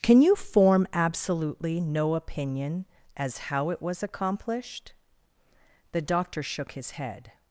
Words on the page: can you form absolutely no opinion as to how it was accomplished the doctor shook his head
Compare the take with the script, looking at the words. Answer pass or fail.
fail